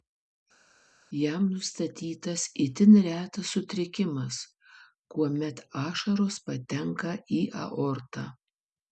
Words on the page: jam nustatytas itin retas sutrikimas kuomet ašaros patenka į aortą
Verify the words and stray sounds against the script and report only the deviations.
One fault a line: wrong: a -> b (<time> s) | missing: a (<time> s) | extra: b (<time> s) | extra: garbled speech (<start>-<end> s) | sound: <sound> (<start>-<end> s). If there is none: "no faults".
no faults